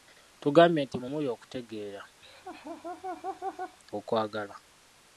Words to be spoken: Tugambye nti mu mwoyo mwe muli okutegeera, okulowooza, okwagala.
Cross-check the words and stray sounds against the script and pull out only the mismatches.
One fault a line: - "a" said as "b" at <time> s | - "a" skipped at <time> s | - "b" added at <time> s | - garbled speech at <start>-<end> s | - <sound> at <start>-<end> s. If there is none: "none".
- "mwoyo mwe" skipped at 1.1 s
- "okulowooza" skipped at 2.0 s
- laugh at 2.2-3.8 s